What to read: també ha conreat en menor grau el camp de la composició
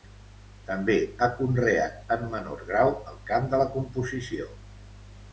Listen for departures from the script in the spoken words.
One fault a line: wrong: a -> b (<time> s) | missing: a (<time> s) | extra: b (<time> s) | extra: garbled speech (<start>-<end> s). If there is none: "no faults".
no faults